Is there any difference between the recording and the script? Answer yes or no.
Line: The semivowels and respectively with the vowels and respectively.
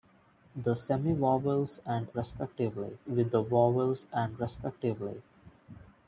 no